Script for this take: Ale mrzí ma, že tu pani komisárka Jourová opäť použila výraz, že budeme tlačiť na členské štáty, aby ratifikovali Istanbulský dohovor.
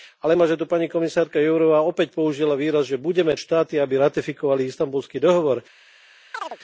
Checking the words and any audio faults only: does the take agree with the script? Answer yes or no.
no